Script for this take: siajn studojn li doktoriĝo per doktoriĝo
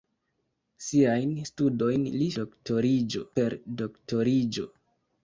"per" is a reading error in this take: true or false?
false